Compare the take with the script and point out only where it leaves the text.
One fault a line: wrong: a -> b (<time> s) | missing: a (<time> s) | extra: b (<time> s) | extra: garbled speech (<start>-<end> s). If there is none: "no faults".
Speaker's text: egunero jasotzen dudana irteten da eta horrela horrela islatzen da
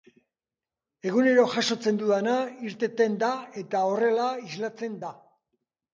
missing: horrela (4.3 s)